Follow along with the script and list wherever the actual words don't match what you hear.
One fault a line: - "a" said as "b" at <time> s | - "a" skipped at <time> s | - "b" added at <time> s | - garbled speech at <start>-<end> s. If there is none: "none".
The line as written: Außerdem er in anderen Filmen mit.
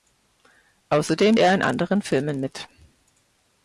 none